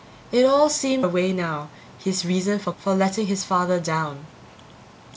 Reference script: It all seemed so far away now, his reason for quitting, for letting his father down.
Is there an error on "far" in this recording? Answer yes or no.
yes